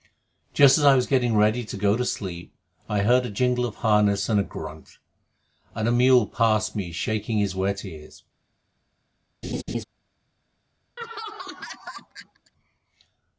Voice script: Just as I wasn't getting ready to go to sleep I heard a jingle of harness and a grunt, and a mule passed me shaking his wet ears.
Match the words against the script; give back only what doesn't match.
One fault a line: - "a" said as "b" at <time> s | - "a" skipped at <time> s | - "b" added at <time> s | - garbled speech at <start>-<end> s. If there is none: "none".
- "wasn't" said as "was" at 0.9 s